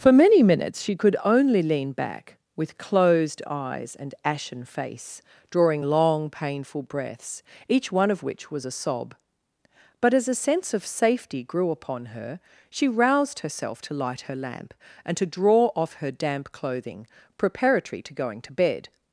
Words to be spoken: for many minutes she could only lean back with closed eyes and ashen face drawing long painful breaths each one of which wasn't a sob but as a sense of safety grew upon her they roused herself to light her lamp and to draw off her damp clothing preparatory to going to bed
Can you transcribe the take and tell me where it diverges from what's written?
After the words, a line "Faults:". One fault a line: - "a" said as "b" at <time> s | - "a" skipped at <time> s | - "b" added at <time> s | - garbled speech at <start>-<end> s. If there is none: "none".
for many minutes she could only lean back with closed eyes and ashen face drawing long painful breaths each one of which was a sob but as a sense of safety grew upon her she roused herself to light her lamp and to draw off her damp clothing preparatory to going to bed
Faults:
- "wasn't" said as "was" at 8.5 s
- "they" said as "she" at 12.7 s